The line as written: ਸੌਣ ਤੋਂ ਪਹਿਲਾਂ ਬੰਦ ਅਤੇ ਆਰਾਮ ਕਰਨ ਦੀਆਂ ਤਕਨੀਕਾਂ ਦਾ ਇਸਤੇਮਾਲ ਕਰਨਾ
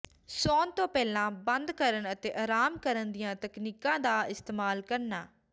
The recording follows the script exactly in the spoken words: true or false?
false